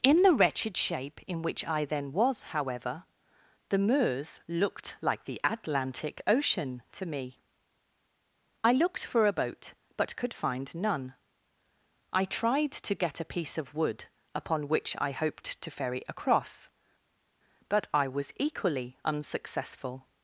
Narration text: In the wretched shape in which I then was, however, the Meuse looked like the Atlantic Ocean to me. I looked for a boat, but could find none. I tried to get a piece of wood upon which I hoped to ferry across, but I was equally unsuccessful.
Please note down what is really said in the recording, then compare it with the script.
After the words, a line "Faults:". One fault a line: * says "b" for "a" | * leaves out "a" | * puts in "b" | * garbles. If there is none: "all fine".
In the wretched shape in which I then was, however, the Meuse looked like the Atlantic Ocean to me. I looked for a boat, but could find none. I tried to get a piece of wood upon which I hoped to ferry across, but I was equally unsuccessful.
Faults:
all fine